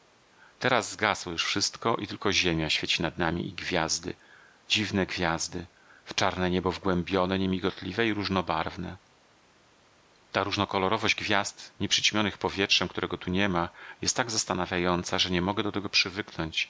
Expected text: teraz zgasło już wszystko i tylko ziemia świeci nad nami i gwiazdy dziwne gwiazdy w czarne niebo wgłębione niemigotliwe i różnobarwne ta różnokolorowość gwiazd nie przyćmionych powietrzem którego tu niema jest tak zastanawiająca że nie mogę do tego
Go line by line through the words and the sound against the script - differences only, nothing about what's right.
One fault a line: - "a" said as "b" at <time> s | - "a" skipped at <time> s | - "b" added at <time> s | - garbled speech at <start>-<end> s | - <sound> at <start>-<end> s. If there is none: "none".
none